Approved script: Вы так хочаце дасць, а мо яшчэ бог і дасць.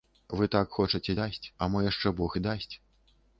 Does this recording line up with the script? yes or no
yes